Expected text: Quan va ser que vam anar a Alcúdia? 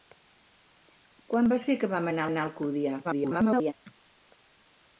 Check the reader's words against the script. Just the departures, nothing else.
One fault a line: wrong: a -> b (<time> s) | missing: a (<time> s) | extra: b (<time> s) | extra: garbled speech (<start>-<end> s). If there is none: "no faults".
extra: anar (2.3 s)
extra: garbled speech (3.0-3.7 s)